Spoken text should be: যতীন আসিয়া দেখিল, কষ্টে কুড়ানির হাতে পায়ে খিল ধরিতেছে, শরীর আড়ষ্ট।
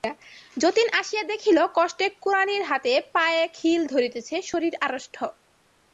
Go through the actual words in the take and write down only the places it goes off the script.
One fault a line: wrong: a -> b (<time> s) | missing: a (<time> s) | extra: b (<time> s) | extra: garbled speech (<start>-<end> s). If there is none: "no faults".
no faults